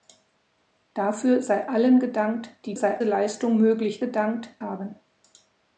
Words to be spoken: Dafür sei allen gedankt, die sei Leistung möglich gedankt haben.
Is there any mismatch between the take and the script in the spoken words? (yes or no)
no